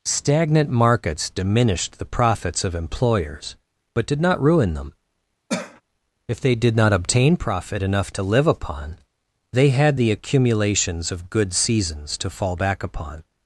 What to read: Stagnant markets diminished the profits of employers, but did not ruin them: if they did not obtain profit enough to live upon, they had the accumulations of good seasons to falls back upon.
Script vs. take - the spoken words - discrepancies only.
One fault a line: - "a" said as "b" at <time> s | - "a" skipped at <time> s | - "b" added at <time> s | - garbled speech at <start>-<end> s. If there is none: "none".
- "falls" said as "fall" at 12.3 s